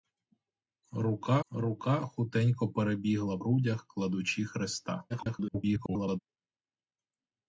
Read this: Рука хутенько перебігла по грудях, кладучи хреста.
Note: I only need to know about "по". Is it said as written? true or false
false